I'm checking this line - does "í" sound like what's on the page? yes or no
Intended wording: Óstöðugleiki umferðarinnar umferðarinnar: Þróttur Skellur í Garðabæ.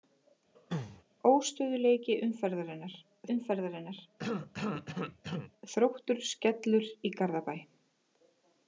yes